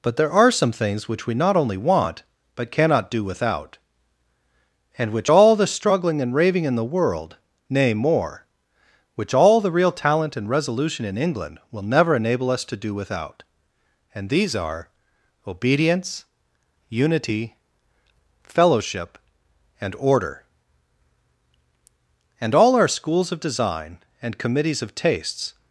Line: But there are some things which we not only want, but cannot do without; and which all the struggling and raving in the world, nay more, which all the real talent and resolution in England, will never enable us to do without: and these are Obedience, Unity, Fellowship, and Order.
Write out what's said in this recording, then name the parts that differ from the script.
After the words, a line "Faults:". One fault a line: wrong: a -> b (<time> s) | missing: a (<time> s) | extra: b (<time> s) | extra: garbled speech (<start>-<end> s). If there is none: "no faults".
But there are some things which we not only want, but cannot do without; and which all the struggling and raving in the world, nay more, which all the real talent and resolution in England, will never enable us to do without: and these are Obedience, Unity, Fellowship, and Order. And all our schools of design, and committees of tastes
Faults:
extra: And all our schools of design and committees of tastes (22.4 s)